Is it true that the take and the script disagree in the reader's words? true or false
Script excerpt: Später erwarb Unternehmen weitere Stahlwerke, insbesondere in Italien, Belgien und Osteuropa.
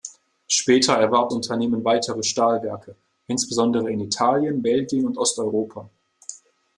false